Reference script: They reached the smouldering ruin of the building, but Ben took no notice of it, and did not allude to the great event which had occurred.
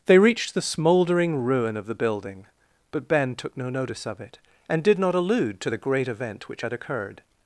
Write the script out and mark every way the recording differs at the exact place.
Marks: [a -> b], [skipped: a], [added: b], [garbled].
They reached the smouldering ruin of the building, but Ben took no notice of it, and did not allude to the great event which had occurred.